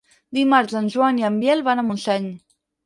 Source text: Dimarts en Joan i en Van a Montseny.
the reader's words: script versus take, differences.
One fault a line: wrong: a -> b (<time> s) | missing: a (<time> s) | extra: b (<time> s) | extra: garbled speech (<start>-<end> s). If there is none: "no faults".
extra: Biel (1.4 s)